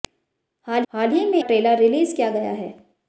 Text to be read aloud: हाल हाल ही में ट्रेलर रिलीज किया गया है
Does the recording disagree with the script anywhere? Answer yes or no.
no